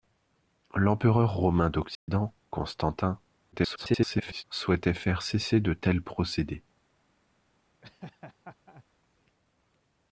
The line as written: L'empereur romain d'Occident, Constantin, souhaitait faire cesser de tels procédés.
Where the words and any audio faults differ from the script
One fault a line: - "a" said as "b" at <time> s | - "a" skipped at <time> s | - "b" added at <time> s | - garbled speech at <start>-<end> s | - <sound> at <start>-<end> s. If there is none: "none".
- dropout at 1.9-2.1 s
- garbled speech at 3.5-4.4 s
- laugh at 7.8-8.8 s